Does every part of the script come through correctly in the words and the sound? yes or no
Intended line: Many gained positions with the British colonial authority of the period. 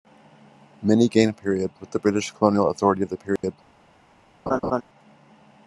no